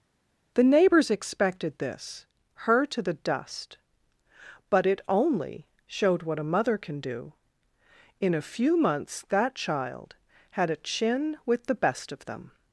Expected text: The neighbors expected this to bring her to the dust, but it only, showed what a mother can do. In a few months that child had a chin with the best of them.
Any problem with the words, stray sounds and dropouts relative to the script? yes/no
yes